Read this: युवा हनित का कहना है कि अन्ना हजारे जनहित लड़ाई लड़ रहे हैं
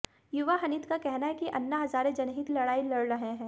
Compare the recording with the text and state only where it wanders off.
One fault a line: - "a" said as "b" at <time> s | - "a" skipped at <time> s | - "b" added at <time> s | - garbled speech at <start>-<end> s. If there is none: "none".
none